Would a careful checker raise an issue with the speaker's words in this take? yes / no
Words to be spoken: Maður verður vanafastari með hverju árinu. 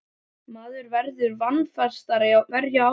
yes